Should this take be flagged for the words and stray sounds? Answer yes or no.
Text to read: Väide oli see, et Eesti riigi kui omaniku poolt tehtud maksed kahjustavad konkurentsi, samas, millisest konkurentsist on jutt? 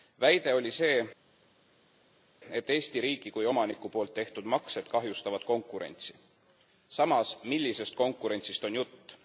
no